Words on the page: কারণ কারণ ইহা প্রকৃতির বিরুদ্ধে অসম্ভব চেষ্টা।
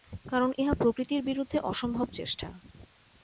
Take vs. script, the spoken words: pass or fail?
fail